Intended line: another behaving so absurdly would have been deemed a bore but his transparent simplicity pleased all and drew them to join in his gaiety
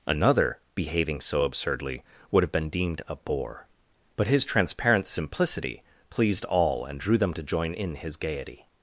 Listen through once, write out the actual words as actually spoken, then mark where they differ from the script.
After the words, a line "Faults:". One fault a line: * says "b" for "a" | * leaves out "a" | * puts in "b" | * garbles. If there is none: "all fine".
another behaving so absurdly would have been deemed a bore but his transparent simplicity pleased all and drew them to join in his gaiety
Faults:
all fine